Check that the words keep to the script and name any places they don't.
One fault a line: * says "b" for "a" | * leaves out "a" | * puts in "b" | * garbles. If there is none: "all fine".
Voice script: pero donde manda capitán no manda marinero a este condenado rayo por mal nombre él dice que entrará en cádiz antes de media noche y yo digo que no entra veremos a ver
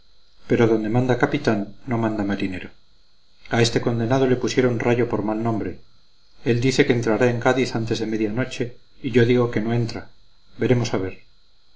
* puts in "le pusieron"